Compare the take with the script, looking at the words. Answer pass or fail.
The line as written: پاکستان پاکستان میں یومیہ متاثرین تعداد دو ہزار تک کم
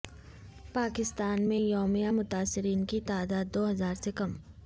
fail